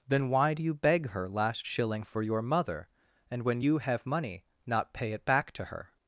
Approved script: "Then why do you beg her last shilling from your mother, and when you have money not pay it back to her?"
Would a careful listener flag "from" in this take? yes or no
yes